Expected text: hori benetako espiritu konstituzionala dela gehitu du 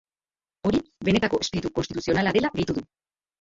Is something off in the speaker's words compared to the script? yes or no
no